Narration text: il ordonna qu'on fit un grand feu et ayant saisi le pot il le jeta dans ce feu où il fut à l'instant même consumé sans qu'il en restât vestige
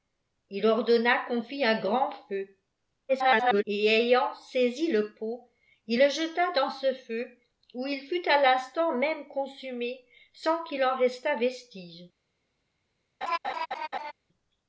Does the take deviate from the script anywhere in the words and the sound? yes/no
yes